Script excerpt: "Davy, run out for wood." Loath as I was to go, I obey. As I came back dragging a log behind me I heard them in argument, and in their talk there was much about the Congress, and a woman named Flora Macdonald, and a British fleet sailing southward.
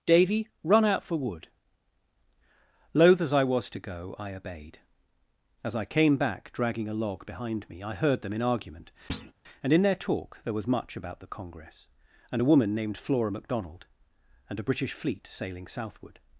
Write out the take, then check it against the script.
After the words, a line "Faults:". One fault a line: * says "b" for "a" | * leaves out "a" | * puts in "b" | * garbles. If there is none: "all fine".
"Davy, run out for wood." Loath as I was to go, I obeyed. As I came back dragging a log behind me I heard them in argument, and in their talk there was much about the Congress, and a woman named Flora Macdonald, and a British fleet sailing southward.
Faults:
* says "obeyed" for "obey"